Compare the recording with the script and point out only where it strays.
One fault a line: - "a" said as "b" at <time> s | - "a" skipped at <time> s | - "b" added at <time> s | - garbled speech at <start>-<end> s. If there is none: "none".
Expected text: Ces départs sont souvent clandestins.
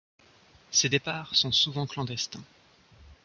none